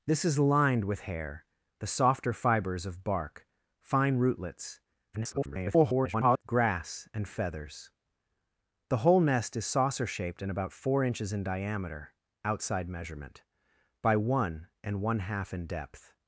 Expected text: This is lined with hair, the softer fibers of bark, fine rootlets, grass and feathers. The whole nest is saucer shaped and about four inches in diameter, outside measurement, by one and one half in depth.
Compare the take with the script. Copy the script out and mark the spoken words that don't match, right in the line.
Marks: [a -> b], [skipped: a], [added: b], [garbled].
This is lined with hair, the softer fibers of bark, fine rootlets, [garbled] grass and feathers. The whole nest is saucer shaped and about four inches in diameter, outside measurement, by one and one half in depth.